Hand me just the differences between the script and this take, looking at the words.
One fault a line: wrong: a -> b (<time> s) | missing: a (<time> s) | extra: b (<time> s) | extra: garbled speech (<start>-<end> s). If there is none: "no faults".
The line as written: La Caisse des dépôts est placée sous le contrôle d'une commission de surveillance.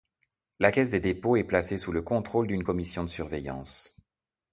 no faults